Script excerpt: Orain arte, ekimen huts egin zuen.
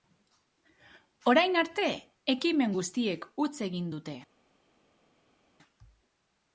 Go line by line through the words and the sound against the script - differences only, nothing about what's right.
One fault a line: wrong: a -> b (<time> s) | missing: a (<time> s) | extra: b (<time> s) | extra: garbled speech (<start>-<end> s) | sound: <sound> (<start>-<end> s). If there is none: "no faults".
extra: guztiek (2.8 s)
wrong: zuen -> dute (3.9 s)